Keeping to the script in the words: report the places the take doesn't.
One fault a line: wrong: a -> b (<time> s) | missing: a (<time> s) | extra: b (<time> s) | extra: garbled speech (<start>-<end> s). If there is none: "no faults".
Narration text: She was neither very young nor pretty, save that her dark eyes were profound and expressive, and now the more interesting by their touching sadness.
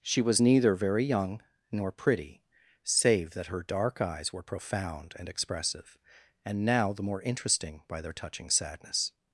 no faults